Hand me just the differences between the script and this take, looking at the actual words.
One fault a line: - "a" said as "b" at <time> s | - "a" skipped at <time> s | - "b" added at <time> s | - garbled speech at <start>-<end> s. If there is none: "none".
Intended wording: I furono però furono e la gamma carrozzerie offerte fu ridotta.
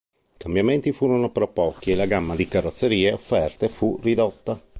- "cambiamenti" added at 0.4 s
- "furono" said as "pochi" at 1.5 s
- "di" added at 2.3 s